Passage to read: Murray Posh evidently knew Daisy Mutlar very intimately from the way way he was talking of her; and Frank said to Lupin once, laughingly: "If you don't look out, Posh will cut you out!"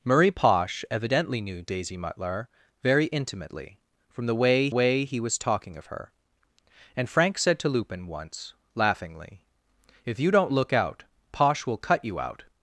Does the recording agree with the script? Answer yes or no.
yes